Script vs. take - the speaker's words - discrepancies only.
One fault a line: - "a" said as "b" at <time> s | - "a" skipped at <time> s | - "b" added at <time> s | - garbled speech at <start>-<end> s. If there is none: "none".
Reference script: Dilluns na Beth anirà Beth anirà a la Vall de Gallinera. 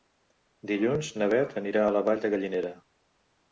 - "Beth anirà" skipped at 1.9 s